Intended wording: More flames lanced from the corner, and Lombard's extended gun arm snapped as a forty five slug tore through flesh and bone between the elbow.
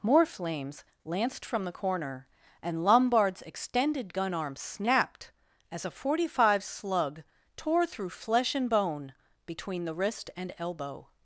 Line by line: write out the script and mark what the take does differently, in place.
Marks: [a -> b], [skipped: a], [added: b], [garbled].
More flames lanced from the corner, and Lombard's extended gun arm snapped as a forty five slug tore through flesh and bone between the [added: wrist and] elbow.